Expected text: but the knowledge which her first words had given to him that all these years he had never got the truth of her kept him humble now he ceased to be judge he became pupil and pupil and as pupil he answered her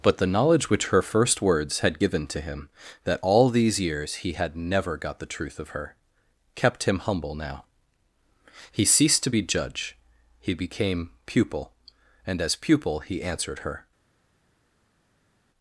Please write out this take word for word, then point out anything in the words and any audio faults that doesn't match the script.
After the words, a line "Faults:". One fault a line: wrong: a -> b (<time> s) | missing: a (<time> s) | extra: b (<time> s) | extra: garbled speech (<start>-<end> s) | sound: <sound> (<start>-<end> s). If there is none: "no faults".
but the knowledge which her first words had given to him that all these years he had never got the truth of her kept him humble now he ceased to be judge he became pupil and as pupil he answered her
Faults:
missing: pupil and (12.4 s)